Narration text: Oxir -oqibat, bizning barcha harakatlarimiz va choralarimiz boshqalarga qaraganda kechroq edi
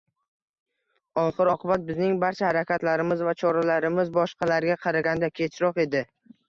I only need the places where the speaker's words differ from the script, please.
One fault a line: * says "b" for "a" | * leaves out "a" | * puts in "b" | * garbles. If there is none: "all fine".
all fine